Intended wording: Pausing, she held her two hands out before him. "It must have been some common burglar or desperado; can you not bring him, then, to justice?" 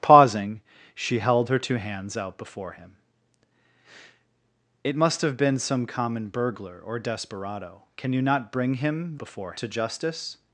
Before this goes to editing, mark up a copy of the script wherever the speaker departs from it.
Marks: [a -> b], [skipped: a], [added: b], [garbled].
Pausing, she held her two hands out before him. "It must have been some common burglar or desperado; can you not bring him, [then, -> before] to justice?"